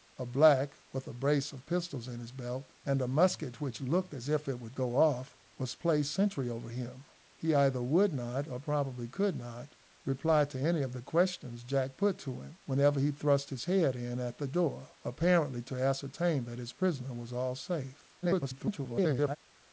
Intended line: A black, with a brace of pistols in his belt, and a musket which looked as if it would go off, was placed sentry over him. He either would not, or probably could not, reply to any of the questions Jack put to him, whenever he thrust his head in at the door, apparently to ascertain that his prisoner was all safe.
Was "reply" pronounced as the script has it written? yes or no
yes